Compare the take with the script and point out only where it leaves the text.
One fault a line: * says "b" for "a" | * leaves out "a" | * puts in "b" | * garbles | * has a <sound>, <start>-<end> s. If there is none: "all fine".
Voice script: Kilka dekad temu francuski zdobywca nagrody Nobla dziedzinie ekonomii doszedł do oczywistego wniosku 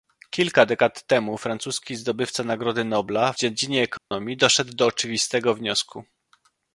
* has a dropout, 4.0-4.1 s